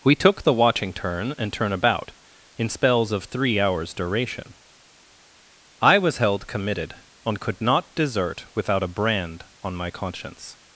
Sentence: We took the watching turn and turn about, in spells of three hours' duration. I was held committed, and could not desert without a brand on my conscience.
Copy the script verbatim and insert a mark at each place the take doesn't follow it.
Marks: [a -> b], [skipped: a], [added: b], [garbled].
We took the watching turn and turn about, in spells of three hours' duration. I was held committed, and could not desert without a brand on my conscience.